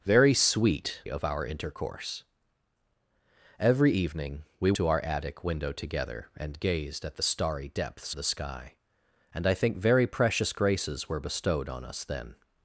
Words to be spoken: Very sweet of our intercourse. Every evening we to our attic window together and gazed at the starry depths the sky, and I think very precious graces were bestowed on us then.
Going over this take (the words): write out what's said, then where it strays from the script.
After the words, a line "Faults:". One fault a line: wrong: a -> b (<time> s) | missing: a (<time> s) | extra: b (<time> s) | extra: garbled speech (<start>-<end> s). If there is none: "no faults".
Very sweet of our intercourse. Every evening we to our attic window together and gazed at the starry depths the sky, and I think very precious graces were bestowed on us then.
Faults:
no faults